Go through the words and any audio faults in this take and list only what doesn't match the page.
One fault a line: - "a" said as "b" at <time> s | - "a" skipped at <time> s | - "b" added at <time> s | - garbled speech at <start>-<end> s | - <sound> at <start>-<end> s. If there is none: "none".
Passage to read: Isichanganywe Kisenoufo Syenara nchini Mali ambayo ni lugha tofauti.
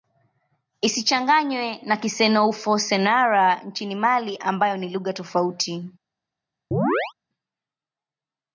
- "na" added at 1.8 s
- chirp at 6.7-7.1 s